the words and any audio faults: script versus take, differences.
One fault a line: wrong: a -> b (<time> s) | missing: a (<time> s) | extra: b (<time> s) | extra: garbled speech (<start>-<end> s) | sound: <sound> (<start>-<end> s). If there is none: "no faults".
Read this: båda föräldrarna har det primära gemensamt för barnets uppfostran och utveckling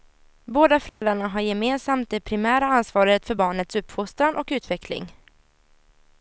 sound: dropout (0.9-1.0 s)
extra: gemensamt (1.4 s)
wrong: gemensamt -> ansvaret (2.6 s)